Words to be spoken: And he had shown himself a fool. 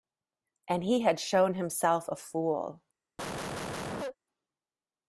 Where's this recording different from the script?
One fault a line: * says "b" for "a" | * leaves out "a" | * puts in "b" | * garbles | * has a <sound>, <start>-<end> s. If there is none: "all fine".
* has a cough, 3.2-4.2 s